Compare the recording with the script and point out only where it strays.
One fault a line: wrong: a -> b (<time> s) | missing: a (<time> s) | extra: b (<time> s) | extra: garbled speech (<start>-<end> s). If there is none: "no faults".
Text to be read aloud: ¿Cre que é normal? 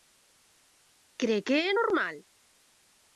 no faults